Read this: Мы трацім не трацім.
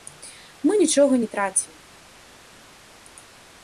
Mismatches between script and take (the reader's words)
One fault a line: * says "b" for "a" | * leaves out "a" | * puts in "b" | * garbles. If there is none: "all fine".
* says "нічога" for "трацім"